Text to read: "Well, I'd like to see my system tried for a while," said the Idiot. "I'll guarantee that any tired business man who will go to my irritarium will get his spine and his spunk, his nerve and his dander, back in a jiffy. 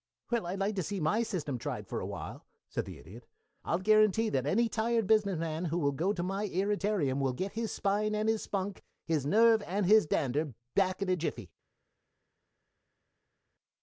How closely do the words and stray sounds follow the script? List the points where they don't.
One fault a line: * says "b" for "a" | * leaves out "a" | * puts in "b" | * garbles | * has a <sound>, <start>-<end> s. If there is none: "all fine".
all fine